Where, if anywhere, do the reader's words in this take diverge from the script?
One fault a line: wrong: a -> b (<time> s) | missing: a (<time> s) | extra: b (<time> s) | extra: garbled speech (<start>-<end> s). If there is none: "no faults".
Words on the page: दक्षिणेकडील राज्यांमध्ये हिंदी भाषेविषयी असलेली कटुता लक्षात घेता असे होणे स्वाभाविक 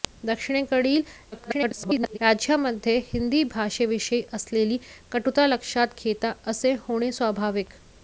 extra: garbled speech (1.3-2.2 s)